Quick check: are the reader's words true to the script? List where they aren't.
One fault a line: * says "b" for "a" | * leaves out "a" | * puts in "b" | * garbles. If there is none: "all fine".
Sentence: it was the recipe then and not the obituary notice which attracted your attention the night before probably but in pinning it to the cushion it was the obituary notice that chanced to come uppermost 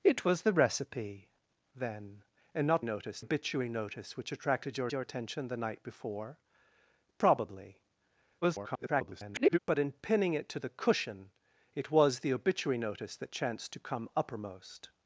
* says "notice" for "the"
* puts in "your"
* garbles